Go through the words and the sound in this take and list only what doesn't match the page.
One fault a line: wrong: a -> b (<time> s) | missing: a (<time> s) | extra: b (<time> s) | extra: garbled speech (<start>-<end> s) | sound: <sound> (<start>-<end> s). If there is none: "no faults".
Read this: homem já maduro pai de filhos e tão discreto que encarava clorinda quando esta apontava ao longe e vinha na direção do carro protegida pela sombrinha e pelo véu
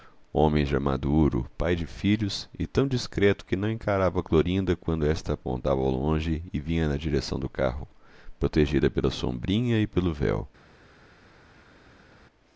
extra: não (3.5 s)